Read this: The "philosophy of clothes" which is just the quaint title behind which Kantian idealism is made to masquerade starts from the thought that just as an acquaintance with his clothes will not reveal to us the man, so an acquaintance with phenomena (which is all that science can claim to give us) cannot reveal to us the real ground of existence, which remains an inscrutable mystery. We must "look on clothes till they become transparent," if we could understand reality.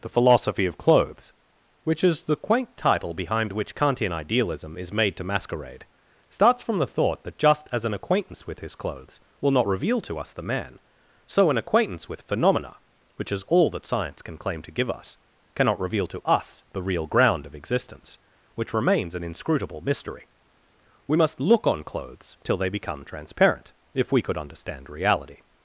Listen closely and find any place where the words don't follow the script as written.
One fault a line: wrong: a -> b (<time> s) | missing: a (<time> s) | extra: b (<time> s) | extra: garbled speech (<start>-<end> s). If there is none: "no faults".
missing: just (2.2 s)